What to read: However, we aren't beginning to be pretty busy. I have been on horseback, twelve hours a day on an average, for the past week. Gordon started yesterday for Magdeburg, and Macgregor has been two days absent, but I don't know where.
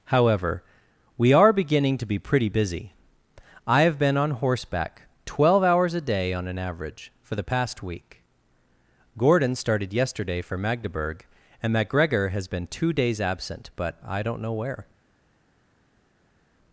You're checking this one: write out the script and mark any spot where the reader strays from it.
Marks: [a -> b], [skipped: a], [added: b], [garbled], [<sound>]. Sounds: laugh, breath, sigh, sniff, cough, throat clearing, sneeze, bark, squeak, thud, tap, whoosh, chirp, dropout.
However, we [aren't -> are] beginning to be pretty busy. I have been on horseback, twelve hours a day on an average, for the past week. Gordon started yesterday for Magdeburg, and Macgregor has been two days absent, but I don't know where.